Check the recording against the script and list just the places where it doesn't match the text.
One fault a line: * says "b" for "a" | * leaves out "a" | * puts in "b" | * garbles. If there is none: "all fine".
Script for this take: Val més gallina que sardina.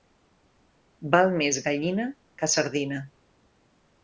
all fine